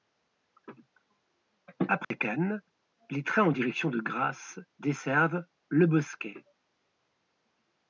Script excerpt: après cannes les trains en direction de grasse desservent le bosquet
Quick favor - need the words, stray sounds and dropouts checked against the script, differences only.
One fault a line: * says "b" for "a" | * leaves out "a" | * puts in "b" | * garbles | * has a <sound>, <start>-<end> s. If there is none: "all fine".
* has a dropout, 2.0-2.1 s